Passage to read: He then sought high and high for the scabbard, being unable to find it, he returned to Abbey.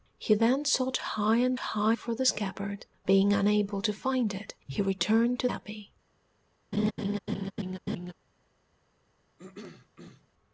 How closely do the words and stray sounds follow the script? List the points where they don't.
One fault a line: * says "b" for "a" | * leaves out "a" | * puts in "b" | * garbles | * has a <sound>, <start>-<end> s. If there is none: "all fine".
* has a laugh, 6.7-8.1 s
* has a throat clearing, 9.4-10.3 s